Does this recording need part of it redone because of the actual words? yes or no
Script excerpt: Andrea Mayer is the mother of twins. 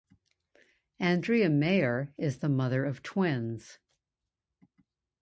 no